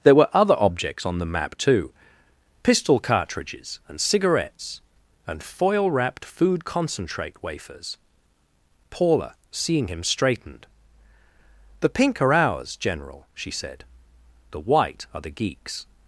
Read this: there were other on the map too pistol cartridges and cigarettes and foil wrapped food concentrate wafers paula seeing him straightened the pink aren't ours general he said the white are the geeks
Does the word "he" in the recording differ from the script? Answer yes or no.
yes